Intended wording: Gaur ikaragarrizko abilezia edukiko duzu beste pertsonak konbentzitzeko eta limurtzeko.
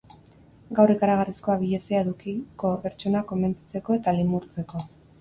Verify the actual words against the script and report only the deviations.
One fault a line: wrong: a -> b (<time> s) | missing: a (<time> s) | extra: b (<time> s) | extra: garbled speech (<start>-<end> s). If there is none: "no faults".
missing: duzu beste (2.7 s)